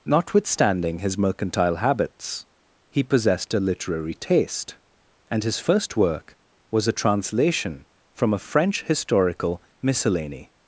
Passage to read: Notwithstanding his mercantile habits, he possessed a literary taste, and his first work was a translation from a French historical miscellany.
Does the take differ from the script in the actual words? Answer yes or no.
no